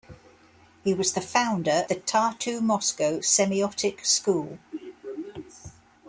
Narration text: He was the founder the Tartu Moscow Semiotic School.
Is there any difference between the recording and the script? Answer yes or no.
no